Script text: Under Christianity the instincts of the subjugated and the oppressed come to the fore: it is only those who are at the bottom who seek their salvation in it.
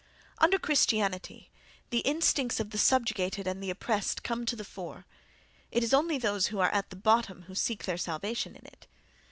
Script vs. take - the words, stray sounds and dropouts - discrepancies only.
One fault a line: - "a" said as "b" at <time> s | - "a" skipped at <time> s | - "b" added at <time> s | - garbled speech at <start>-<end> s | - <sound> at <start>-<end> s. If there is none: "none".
none